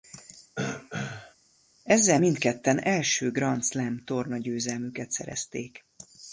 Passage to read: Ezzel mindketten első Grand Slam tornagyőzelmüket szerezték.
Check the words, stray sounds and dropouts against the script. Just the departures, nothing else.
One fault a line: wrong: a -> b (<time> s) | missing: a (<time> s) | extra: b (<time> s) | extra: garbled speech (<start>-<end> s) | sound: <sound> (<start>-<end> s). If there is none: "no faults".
sound: throat clearing (0.6-1.4 s)